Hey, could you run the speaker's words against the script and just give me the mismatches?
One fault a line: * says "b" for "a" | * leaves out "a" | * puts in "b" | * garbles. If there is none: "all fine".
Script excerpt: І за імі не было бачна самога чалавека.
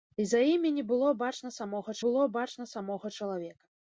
* puts in "было бачна самога"